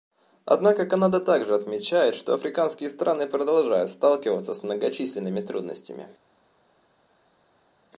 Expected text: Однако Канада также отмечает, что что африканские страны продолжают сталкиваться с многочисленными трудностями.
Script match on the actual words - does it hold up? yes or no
no